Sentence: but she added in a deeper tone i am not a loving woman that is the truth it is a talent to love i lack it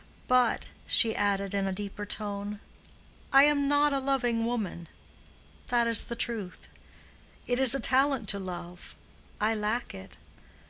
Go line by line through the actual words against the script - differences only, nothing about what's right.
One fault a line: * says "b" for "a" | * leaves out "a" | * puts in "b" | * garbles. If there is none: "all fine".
all fine